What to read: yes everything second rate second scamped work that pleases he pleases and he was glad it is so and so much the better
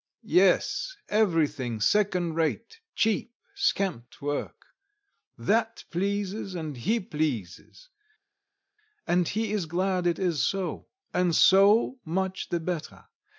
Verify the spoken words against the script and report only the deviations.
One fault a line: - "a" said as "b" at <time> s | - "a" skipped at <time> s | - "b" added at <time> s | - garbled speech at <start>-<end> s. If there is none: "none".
- "second" said as "cheap" at 3.0 s
- "and" added at 6.5 s
- "was" said as "is" at 9.5 s